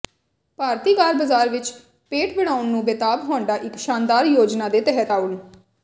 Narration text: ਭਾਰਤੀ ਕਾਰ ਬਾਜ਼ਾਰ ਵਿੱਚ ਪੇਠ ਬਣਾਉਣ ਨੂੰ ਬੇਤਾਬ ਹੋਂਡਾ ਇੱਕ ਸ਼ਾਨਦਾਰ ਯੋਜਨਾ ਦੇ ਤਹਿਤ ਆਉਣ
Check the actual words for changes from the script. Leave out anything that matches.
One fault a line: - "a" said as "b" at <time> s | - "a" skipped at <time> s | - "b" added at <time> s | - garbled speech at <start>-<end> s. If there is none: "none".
none